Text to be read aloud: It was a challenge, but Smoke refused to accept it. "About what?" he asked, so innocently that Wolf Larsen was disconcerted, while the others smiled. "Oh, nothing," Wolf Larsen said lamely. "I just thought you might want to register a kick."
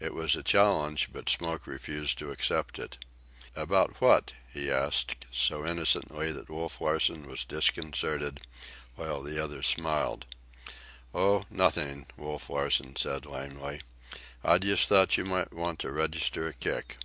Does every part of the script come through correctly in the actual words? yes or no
yes